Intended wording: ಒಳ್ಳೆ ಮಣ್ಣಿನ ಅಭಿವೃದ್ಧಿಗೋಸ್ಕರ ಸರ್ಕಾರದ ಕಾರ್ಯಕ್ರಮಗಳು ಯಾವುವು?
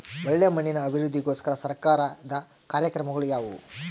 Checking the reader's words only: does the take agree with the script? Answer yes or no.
yes